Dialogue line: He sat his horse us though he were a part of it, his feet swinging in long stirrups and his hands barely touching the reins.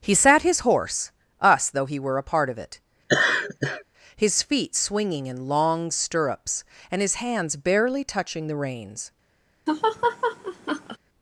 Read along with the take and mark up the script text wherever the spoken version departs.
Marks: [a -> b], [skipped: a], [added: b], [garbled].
He sat his horse us though he were a part of it, his feet swinging in long stirrups and his hands barely touching the reins.